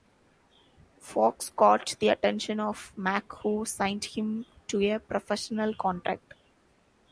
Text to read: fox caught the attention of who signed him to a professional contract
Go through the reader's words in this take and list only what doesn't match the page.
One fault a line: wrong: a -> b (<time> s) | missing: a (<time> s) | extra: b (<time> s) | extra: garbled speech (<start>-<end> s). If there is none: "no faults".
extra: mack (3.0 s)